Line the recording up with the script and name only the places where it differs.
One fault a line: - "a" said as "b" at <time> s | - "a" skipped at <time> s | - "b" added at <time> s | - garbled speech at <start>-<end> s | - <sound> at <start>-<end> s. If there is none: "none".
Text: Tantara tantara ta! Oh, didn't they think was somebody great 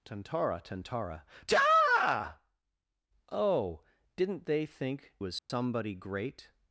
- dropout at 5.4-5.5 s